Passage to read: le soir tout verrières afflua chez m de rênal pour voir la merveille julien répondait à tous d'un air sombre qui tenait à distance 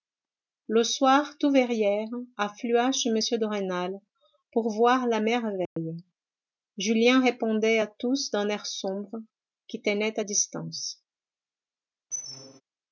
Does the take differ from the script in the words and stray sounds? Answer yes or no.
yes